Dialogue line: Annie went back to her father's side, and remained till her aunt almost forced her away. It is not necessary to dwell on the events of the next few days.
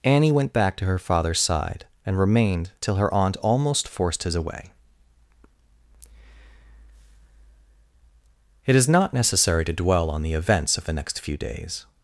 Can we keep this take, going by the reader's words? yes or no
no